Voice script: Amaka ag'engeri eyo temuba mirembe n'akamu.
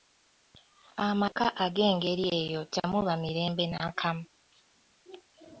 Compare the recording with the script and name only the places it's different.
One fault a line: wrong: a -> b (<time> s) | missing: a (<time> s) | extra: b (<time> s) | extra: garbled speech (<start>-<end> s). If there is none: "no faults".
no faults